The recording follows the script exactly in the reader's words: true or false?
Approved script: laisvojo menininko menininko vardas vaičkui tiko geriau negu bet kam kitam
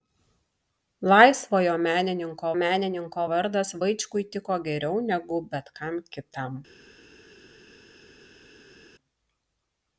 true